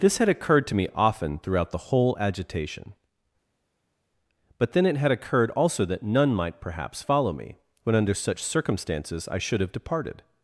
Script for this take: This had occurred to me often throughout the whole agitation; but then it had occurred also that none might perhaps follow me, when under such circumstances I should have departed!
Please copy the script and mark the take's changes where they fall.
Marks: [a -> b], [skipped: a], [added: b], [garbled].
This had occurred to me often throughout the whole agitation; but then it had occurred also that none might perhaps follow me, when under such circumstances I should have departed!